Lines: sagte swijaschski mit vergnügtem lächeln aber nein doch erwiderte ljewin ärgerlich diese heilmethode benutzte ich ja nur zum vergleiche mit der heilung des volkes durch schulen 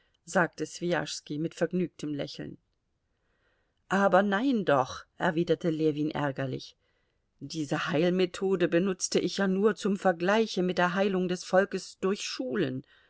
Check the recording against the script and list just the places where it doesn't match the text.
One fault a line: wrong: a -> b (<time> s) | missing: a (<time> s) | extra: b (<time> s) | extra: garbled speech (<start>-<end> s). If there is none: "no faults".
no faults